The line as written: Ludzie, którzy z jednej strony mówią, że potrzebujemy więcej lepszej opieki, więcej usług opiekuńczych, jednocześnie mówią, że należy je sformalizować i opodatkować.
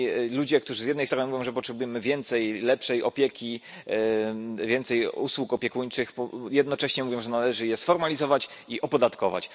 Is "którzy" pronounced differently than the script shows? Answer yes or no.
no